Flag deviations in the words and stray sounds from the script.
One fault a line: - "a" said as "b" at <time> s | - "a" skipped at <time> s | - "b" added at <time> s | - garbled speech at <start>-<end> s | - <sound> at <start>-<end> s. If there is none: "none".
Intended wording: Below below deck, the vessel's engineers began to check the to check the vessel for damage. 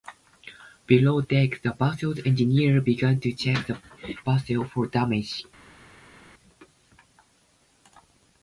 - "below" skipped at 1.2 s
- "to check the" skipped at 3.8 s